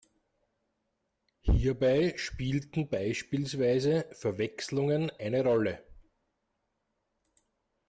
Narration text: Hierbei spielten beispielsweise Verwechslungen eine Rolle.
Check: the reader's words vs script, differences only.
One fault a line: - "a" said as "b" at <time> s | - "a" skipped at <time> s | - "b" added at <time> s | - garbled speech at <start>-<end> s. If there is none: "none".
none